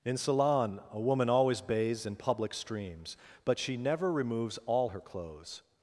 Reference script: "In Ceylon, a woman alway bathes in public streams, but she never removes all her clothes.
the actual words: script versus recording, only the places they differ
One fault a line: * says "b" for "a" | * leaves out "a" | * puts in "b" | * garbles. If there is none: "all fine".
* says "always" for "alway"